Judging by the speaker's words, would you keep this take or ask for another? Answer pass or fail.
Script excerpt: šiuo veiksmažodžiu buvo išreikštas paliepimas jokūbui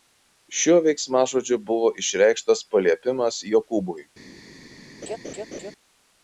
pass